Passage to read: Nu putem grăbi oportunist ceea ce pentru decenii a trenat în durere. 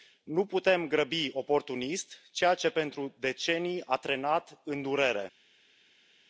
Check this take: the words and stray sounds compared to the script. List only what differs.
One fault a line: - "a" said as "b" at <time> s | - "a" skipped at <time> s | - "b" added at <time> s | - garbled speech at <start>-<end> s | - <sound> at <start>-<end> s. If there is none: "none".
none